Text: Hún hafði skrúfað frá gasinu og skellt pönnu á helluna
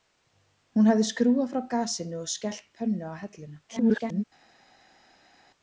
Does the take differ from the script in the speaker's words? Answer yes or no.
yes